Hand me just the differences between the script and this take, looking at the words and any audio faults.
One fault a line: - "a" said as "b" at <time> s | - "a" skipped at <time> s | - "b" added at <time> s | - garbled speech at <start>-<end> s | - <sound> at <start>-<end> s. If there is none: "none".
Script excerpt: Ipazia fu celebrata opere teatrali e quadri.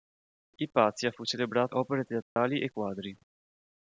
- dropout at 2.2-2.4 s